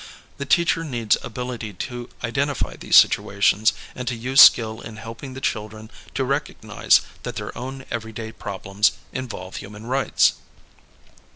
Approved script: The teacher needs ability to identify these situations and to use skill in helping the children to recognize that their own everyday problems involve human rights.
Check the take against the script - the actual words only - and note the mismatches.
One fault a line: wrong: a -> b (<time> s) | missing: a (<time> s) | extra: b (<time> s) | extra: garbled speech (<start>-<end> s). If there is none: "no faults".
no faults